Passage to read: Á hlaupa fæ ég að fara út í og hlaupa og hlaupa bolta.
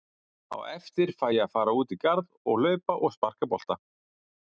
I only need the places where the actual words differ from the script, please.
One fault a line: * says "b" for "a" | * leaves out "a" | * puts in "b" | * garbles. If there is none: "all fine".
* says "eftir" for "hlaupa"
* puts in "garð"
* says "sparka" for "hlaupa"